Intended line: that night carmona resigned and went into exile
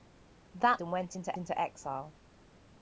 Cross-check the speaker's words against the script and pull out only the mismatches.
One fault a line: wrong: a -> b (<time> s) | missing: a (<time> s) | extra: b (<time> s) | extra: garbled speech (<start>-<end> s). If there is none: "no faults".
missing: night carmona resigned (0.8 s)
extra: into (1.4 s)